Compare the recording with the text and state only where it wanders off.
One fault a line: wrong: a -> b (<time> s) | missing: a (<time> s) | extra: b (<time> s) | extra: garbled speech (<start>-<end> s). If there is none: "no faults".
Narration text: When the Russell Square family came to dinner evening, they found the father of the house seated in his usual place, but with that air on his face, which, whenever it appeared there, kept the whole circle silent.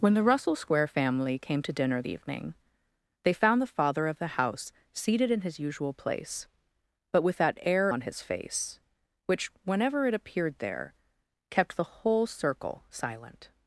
no faults